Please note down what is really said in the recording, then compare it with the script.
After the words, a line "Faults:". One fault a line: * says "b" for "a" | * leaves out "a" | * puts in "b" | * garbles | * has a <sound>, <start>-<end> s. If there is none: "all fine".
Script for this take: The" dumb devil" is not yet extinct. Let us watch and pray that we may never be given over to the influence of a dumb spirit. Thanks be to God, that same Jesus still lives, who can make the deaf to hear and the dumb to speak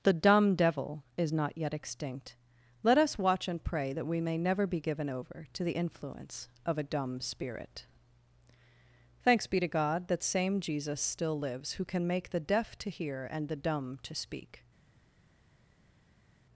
The" dumb devil" is not yet extinct. Let us watch and pray that we may never be given over to the influence of a dumb spirit. Thanks be to God, that same Jesus still lives, who can make the deaf to hear and the dumb to speak
Faults:
all fine